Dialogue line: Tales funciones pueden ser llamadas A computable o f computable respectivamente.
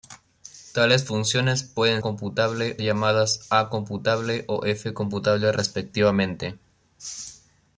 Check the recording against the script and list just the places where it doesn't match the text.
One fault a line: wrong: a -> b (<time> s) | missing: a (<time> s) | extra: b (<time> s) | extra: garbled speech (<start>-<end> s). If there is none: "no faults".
wrong: ser -> computable (2.0 s)